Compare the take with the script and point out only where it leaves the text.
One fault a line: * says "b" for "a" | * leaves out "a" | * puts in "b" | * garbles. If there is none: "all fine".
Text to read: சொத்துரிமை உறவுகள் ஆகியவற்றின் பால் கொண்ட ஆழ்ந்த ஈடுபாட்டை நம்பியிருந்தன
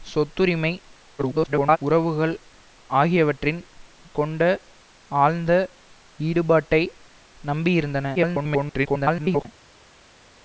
* garbles
* leaves out "பால்"
* garbles